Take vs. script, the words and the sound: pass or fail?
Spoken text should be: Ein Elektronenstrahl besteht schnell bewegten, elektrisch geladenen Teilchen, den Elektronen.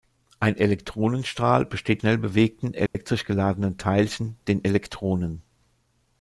fail